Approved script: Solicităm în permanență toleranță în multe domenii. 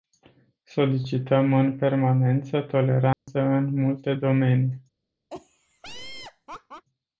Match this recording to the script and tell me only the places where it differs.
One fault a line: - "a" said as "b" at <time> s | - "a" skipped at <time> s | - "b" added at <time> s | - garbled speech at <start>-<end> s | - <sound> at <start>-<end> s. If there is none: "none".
- dropout at 3.1-3.3 s
- laugh at 5.3-6.9 s